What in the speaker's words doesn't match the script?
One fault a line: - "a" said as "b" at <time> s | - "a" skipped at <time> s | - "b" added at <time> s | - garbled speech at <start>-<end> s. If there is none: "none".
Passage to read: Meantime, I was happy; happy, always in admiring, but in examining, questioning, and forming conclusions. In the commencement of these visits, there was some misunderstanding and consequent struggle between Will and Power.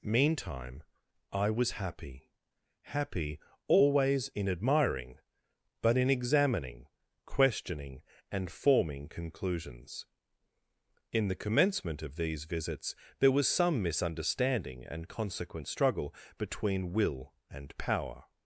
none